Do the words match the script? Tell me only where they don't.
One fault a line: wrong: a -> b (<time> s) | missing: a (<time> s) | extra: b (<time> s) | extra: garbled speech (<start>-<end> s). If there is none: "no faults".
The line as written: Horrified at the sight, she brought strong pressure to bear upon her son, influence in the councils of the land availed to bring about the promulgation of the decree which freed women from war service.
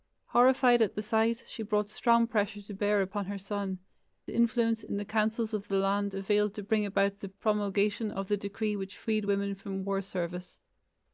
no faults